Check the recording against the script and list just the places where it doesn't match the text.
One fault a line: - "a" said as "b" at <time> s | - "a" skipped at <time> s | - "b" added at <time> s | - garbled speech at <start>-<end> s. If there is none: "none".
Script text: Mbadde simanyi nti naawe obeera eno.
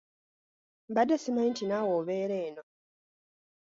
none